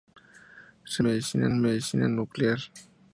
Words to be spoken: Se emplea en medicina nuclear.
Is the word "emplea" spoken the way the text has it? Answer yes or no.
no